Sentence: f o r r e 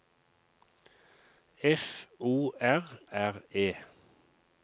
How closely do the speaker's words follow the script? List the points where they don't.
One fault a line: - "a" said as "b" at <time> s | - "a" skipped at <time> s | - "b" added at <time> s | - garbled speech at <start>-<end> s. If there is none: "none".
none